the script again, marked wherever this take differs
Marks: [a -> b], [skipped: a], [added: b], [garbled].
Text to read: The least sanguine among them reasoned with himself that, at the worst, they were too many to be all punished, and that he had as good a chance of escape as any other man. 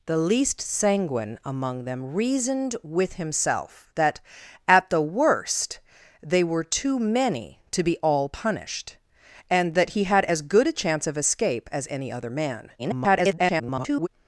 The least sanguine among them reasoned with himself that, at the worst, they were too many to be all punished, and that he had as good a chance of escape as any other man. [garbled]